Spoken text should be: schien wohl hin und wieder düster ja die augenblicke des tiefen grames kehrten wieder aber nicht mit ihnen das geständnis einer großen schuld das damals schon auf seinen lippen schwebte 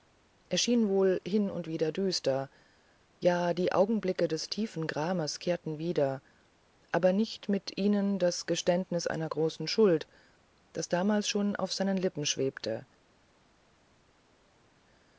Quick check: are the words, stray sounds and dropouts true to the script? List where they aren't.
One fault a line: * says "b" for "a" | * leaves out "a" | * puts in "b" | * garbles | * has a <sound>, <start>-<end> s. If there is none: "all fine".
all fine